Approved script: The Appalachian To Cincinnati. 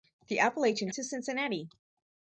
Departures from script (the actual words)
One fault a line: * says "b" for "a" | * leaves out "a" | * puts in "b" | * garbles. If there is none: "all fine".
all fine